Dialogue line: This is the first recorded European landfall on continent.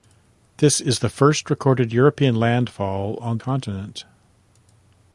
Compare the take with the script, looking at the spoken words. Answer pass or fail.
pass